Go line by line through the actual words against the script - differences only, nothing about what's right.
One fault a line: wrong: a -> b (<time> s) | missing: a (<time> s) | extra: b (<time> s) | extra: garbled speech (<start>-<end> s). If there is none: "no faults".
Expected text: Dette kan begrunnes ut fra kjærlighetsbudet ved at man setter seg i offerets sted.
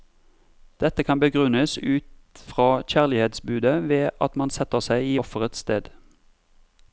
no faults